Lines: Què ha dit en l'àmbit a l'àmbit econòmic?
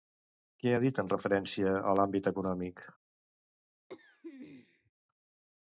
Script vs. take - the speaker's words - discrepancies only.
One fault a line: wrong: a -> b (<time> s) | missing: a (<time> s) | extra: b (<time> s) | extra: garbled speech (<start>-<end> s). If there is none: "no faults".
wrong: l'àmbit -> referència (1.1 s)